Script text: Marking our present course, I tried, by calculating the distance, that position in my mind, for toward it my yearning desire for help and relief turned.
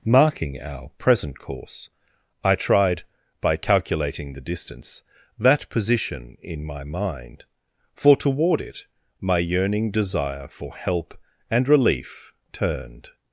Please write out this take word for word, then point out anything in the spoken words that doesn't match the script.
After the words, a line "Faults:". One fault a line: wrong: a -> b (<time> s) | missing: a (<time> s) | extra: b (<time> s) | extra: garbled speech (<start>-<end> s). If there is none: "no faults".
Marking our present course, I tried, by calculating the distance, that position in my mind, for toward it my yearning desire for help and relief turned.
Faults:
no faults